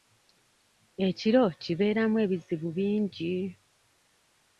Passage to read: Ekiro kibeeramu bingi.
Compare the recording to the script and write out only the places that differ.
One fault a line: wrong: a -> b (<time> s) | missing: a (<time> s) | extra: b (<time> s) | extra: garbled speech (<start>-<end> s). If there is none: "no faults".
extra: ebizibu (2.2 s)